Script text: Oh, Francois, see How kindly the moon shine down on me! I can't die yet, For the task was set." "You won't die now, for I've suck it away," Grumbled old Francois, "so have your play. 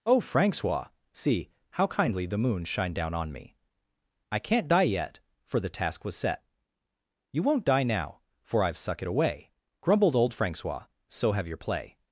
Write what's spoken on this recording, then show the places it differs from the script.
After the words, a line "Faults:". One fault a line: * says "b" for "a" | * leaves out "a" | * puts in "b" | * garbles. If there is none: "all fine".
Oh, Francois, see How kindly the moon shine down on me! I can't die yet, For the task was set." "You won't die now, for I've suck it away," Grumbled old Francois, "so have your play.
Faults:
all fine